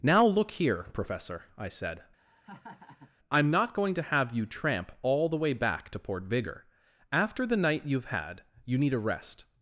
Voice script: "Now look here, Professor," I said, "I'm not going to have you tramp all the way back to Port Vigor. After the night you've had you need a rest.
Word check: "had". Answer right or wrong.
right